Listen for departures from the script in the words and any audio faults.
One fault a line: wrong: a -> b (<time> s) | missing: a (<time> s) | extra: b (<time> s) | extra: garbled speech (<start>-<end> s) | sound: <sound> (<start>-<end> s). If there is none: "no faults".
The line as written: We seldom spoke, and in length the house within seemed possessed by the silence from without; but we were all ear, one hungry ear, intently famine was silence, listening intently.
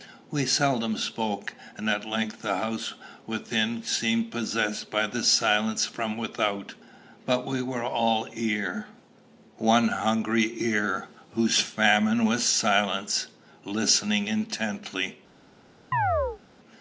wrong: in -> at (1.9 s)
wrong: intently -> whose (11.3 s)
sound: chirp (15.9-16.4 s)